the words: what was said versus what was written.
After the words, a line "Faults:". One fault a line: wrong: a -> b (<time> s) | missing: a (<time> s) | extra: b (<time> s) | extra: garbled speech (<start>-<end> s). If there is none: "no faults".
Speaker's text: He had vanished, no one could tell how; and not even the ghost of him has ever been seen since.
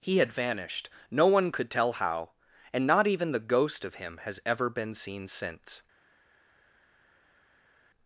He had vanished, no one could tell how; and not even the ghost of him has ever been seen since.
Faults:
no faults